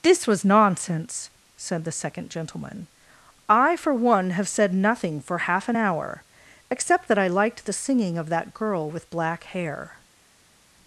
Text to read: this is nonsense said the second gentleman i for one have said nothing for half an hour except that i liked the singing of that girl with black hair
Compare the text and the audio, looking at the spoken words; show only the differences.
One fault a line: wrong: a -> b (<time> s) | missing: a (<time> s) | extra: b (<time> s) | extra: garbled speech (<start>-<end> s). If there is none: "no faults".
wrong: is -> was (0.3 s)